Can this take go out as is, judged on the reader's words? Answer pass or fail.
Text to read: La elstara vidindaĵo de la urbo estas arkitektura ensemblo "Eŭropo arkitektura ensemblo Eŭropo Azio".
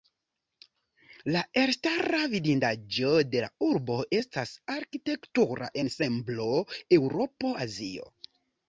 fail